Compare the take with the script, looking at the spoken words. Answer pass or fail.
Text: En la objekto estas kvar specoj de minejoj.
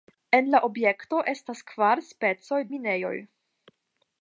fail